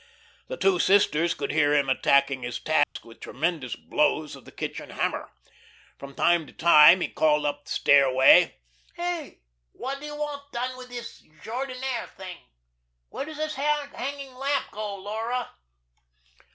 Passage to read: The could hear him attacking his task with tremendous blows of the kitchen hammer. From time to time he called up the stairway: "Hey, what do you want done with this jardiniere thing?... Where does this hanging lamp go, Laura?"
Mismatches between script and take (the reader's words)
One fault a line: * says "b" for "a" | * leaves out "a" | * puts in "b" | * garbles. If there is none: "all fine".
* puts in "two sisters"